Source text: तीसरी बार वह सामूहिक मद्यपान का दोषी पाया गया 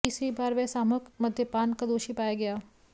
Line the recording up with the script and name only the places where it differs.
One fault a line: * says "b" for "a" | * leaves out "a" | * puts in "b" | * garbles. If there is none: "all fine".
all fine